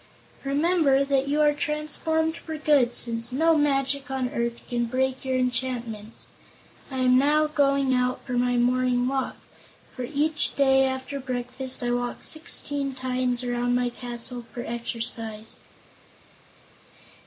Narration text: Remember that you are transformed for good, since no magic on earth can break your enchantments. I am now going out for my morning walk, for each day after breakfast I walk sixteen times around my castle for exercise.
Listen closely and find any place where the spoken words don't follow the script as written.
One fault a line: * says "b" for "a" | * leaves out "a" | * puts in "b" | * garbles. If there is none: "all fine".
all fine